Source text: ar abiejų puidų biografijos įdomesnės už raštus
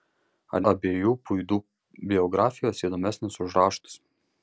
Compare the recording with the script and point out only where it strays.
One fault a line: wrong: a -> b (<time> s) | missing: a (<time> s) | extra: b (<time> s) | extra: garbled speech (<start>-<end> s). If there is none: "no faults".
no faults